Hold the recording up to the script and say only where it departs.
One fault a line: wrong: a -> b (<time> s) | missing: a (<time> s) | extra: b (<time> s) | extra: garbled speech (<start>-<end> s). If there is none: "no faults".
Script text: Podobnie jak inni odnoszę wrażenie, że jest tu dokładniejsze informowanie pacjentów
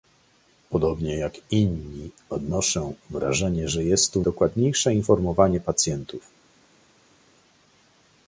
no faults